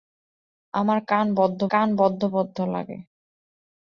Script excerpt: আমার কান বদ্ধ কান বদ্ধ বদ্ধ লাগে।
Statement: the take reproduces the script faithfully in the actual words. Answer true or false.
true